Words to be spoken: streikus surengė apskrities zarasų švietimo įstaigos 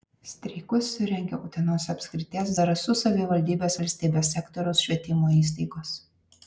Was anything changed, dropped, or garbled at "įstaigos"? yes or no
no